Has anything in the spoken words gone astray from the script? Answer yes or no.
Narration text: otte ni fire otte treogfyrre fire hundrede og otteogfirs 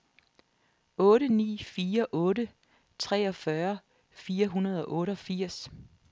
no